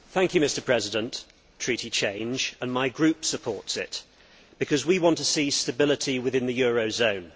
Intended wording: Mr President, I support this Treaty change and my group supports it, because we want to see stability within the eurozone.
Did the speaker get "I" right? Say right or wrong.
wrong